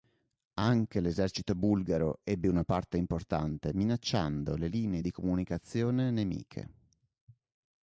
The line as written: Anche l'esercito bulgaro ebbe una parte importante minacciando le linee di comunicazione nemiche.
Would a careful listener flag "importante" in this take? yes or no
no